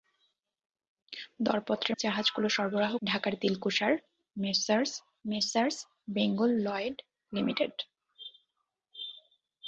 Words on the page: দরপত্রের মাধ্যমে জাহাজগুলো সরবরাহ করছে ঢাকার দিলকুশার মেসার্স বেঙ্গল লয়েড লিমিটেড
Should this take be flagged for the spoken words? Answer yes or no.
yes